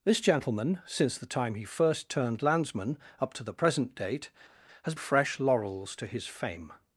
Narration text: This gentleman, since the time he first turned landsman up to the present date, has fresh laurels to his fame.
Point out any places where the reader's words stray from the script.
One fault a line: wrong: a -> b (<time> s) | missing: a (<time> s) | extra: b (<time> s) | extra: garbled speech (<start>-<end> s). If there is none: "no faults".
no faults